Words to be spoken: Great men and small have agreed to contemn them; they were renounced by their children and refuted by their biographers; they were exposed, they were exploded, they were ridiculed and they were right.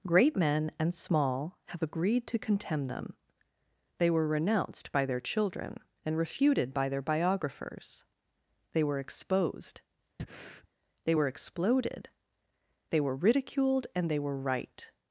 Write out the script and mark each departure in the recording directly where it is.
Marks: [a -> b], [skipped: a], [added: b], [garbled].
Great men and small have agreed to contemn them; they were renounced by their children and refuted by their biographers; they were exposed, they were exploded, they were ridiculed and they were right.